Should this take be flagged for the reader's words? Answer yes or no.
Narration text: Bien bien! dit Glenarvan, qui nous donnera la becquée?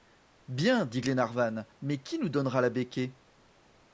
yes